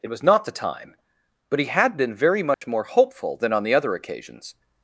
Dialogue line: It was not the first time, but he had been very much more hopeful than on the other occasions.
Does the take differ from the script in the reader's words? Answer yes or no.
yes